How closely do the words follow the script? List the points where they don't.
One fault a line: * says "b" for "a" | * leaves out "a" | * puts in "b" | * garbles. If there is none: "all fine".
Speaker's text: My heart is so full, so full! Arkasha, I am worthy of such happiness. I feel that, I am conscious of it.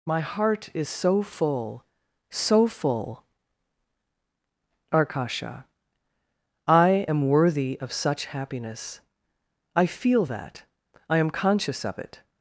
all fine